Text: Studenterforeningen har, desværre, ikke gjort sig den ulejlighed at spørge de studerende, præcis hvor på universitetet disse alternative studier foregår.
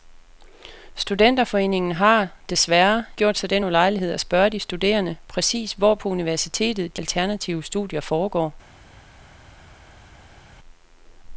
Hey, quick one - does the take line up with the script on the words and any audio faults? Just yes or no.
no